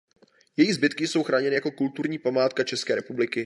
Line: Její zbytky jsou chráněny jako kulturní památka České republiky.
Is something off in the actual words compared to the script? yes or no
no